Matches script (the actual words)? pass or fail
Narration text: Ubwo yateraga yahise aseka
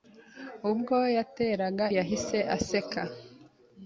pass